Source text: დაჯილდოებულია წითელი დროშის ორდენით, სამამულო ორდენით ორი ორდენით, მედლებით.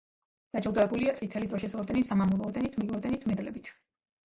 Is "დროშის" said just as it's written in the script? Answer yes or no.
yes